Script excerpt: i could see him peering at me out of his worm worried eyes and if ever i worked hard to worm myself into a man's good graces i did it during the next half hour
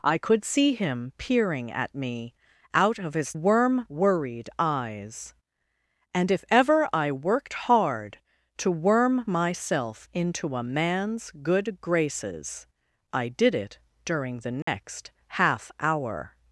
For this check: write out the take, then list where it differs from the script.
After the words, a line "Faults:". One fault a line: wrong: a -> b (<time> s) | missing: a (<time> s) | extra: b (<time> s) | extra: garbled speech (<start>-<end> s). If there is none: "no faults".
i could see him peering at me out of his worm worried eyes and if ever i worked hard to worm myself into a man's good graces i did it during the next half hour
Faults:
no faults